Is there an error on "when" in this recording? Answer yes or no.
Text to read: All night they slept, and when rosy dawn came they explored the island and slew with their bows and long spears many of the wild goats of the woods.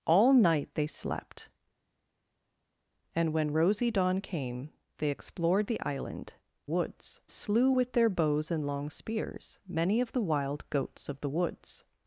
no